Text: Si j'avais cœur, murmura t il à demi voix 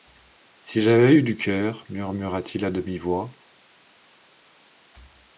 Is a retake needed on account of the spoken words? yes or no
yes